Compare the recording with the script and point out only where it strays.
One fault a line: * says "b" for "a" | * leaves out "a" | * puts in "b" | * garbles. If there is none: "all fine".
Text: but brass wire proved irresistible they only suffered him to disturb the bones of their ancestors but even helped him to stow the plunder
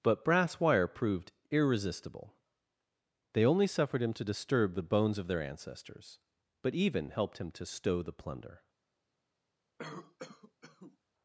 all fine